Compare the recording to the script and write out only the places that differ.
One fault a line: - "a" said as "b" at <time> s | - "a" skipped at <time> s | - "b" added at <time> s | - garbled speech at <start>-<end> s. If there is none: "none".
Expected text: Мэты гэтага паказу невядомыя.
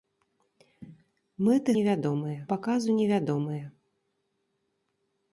- "гэтага" said as "невядомыя" at 1.8 s